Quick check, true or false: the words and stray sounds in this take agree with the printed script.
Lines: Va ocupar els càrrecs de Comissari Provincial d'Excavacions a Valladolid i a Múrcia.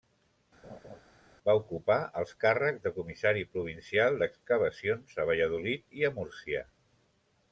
false